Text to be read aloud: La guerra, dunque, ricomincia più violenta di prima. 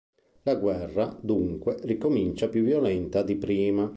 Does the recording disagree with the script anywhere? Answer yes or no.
no